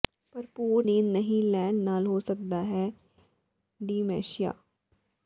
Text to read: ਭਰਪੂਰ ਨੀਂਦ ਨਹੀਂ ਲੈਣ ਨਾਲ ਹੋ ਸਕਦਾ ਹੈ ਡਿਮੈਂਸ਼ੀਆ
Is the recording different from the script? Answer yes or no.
no